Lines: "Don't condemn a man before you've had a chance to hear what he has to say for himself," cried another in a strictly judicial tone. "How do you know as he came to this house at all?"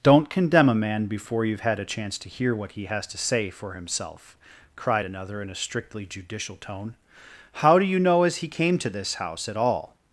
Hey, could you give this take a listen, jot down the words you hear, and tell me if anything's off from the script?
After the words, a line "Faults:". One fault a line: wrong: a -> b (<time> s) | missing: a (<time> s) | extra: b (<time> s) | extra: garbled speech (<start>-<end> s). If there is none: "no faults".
"Don't condemn a man before you've had a chance to hear what he has to say for himself," cried another in a strictly judicial tone. "How do you know as he came to this house at all?"
Faults:
no faults